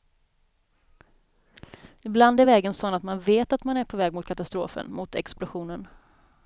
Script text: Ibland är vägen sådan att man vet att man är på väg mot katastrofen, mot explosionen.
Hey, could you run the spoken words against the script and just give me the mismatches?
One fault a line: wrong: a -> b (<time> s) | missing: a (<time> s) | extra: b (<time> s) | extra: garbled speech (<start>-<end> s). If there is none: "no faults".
no faults